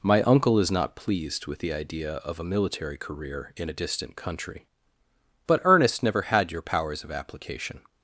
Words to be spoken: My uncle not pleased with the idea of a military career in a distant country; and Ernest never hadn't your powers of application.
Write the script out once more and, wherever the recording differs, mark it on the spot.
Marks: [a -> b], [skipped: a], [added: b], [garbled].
My uncle [added: is] not pleased with the idea of a military career in a distant country; [and -> but] Ernest never [hadn't -> had] your powers of application.